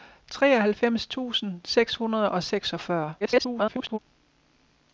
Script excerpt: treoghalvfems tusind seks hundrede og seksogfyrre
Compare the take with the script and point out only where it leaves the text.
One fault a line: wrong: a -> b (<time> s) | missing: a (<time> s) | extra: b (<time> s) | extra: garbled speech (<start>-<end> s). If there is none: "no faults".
extra: garbled speech (3.2-4.0 s)